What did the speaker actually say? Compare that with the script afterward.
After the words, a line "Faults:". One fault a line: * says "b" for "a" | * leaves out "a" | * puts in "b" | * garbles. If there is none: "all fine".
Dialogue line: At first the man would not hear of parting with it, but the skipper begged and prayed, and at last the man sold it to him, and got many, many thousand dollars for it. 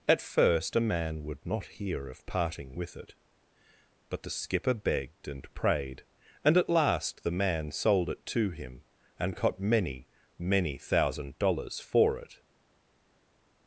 At first a man would not hear of parting with it, but the skipper begged and prayed, and at last the man sold it to him, and got many, many thousand dollars for it.
Faults:
* says "a" for "the"